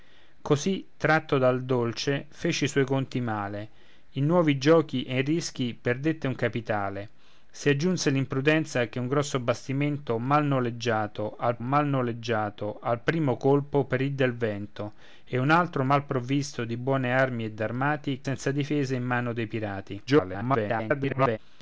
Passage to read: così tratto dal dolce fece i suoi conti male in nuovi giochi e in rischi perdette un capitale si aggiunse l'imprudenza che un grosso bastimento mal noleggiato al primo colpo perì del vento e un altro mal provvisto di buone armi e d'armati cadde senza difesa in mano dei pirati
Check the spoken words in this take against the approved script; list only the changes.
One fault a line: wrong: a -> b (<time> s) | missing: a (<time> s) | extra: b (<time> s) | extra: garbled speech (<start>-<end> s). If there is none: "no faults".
extra: mal noleggiato al (11.6 s)
missing: cadde (18.2 s)
extra: garbled speech (20.1-21.4 s)